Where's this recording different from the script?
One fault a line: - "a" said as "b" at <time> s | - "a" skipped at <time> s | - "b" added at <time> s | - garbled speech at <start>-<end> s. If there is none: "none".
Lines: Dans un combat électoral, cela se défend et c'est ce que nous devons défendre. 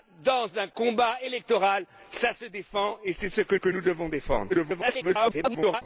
- "que" added at 3.5 s
- garbled speech at 4.5-5.8 s